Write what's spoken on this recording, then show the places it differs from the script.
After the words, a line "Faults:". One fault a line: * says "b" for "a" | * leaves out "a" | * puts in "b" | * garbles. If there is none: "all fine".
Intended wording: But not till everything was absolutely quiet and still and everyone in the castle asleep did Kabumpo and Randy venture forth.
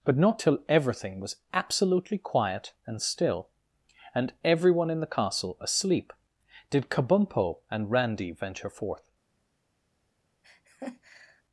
But not till everything was absolutely quiet and still and everyone in the castle asleep did Kabumpo and Randy venture forth.
Faults:
all fine